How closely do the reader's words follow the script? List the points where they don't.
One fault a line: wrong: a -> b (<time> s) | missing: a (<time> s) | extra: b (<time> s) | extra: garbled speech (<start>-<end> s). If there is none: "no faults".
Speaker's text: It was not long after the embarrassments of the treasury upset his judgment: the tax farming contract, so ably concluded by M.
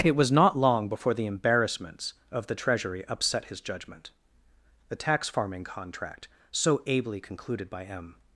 wrong: after -> before (0.9 s)